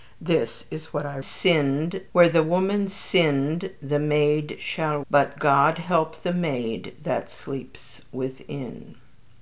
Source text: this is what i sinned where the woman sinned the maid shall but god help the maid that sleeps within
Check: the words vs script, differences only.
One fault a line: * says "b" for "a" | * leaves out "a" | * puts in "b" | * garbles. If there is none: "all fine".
all fine